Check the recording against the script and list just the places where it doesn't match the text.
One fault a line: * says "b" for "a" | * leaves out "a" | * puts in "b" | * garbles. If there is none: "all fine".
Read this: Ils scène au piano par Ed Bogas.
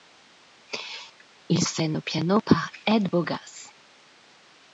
all fine